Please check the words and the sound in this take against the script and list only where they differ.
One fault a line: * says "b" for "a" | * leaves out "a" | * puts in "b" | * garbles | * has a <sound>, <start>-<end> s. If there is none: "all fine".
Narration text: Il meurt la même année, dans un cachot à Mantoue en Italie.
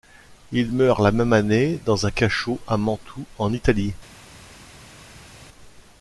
all fine